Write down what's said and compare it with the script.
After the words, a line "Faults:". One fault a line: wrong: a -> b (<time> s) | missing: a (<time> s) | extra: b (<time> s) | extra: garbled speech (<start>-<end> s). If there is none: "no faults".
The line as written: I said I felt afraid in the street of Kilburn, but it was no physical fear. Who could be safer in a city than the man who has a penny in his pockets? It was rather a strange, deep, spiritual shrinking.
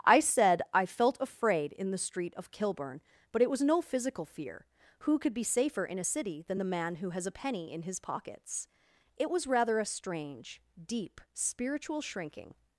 I said I felt afraid in the street of Kilburn, but it was no physical fear. Who could be safer in a city than the man who has a penny in his pockets? It was rather a strange, deep, spiritual shrinking.
Faults:
no faults